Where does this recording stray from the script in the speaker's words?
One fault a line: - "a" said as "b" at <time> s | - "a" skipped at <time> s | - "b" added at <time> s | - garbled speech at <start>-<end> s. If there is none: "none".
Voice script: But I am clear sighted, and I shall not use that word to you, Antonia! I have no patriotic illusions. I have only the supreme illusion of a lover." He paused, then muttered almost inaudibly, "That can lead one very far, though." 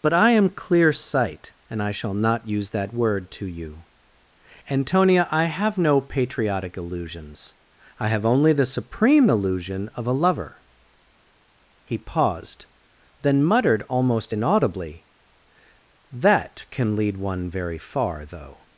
- "sighted" said as "sight" at 0.9 s